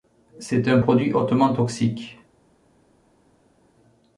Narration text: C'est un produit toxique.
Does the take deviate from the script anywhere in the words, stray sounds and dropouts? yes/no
yes